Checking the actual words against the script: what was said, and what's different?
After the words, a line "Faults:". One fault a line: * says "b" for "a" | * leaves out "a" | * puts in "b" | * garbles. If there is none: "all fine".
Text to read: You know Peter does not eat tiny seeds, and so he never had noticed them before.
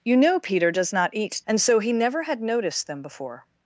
You know Peter does not eat and so he never had noticed them before.
Faults:
* leaves out "tiny seeds"